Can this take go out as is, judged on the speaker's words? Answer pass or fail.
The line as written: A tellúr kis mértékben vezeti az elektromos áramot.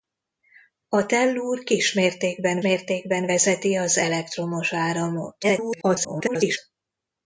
fail